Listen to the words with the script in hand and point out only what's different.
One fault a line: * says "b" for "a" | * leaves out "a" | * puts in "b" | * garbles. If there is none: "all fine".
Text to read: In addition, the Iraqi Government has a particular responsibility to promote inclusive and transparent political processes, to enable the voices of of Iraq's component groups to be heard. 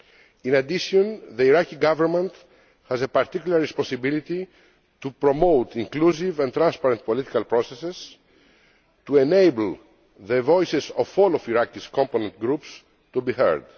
* puts in "all"